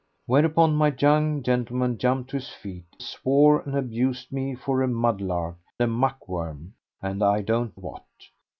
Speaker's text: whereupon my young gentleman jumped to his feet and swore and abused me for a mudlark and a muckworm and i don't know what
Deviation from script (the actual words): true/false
true